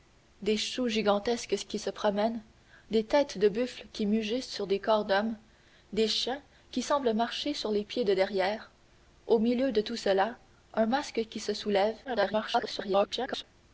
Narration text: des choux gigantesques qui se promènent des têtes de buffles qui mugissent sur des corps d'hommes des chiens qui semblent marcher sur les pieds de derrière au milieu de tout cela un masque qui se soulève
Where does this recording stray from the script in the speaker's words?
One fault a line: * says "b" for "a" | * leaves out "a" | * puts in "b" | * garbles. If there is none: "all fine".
* garbles